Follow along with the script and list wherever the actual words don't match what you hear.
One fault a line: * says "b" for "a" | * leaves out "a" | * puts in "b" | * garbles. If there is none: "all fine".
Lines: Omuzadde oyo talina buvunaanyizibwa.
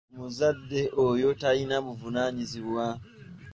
all fine